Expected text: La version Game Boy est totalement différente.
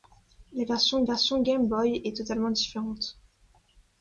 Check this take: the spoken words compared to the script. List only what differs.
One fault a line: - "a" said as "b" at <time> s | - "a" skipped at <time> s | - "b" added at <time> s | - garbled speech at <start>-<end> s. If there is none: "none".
- "version" added at 1.0 s